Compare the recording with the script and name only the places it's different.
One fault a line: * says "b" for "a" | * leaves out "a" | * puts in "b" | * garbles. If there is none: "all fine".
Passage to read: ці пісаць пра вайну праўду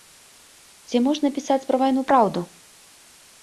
* puts in "можна"